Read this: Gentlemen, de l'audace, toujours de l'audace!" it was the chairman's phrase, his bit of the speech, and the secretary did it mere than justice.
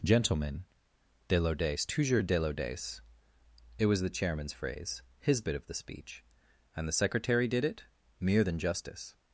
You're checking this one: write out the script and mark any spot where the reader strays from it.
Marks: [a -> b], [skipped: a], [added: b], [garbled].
Gentlemen, de l'audace, toujours de l'audace!" it was the chairman's phrase, his bit of the speech, and the secretary did it mere than justice.